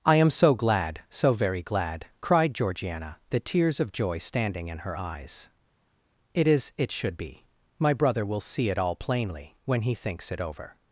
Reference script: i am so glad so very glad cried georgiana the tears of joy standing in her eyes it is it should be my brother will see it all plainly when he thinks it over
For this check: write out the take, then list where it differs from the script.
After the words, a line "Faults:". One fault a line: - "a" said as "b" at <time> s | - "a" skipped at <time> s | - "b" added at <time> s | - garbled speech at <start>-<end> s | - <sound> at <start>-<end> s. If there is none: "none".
i am so glad so very glad cried georgiana the tears of joy standing in her eyes it is it should be my brother will see it all plainly when he thinks it over
Faults:
none